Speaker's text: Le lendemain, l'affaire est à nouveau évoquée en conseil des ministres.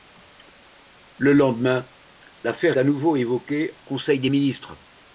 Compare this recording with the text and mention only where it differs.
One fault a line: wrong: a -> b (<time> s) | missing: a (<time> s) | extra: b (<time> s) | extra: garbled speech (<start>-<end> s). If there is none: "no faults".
missing: est (2.8 s)
missing: en (3.8 s)